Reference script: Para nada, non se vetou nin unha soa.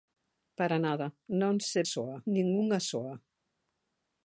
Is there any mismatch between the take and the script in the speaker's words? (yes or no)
yes